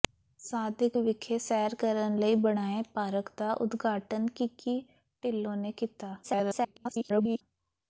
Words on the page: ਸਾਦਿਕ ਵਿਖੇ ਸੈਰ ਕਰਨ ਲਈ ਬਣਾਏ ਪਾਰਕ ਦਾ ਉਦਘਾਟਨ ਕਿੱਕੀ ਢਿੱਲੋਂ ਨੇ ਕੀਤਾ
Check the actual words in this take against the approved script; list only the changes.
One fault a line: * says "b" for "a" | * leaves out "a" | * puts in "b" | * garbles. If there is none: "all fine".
* garbles